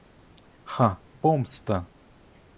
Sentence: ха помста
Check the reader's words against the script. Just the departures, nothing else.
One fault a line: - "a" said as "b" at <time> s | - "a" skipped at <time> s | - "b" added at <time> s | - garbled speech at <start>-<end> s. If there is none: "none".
none